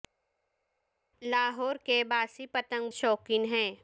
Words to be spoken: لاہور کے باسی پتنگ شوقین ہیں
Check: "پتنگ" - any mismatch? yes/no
no